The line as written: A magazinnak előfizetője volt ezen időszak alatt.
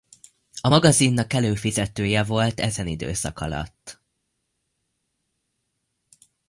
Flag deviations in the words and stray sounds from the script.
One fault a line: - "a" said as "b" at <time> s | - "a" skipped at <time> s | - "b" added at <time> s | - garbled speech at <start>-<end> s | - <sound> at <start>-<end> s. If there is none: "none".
none